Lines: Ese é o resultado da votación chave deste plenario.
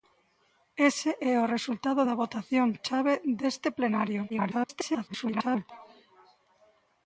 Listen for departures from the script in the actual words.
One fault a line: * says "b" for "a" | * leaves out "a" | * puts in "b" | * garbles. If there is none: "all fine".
* garbles